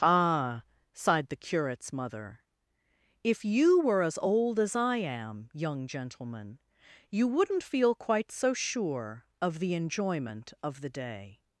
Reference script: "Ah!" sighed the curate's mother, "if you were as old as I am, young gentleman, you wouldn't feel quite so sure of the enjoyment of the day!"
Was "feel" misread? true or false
false